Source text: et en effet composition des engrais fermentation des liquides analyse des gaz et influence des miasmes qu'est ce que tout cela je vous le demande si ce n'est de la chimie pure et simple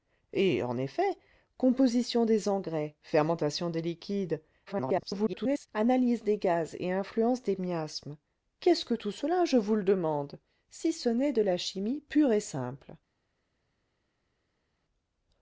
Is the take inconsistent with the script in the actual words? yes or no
yes